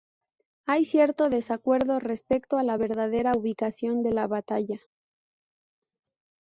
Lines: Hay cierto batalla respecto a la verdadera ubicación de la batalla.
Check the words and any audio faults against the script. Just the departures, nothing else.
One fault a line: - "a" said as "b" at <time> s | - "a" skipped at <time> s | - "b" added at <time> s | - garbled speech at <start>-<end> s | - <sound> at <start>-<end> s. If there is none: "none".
- "batalla" said as "desacuerdo" at 1.3 s